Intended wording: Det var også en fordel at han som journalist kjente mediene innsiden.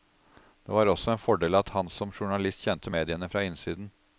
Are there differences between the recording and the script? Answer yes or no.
yes